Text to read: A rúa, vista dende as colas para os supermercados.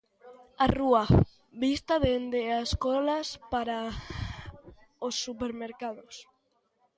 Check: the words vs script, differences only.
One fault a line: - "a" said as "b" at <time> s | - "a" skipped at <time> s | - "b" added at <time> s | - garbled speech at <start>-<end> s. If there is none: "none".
none